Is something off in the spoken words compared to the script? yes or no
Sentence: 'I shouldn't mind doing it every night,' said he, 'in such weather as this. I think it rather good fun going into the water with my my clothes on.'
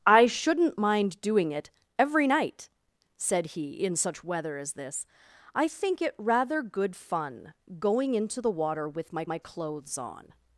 no